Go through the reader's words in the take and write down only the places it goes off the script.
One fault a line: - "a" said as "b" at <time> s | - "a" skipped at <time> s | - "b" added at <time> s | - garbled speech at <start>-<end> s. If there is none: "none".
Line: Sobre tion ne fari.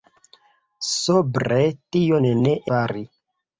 none